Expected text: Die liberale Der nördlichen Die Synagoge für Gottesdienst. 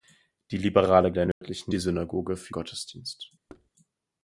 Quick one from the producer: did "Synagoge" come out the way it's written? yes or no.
yes